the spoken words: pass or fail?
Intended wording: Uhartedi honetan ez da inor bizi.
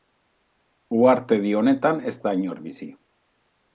pass